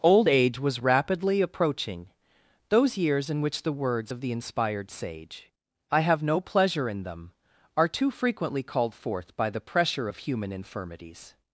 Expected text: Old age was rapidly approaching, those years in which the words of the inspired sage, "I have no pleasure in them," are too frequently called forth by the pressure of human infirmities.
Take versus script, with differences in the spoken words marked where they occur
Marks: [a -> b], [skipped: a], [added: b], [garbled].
Old age was rapidly approaching, those years in which the words of the inspired sage, "I have no pleasure in them," are too frequently called forth by the pressure of human infirmities.